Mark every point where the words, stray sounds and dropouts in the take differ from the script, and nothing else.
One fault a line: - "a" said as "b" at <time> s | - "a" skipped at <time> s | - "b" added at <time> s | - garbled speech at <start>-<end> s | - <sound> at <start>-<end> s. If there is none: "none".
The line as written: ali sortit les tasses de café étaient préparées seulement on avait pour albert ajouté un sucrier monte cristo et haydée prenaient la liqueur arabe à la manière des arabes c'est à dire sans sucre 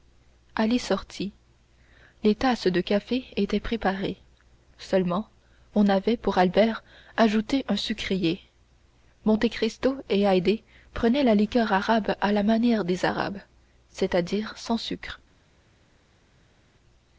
none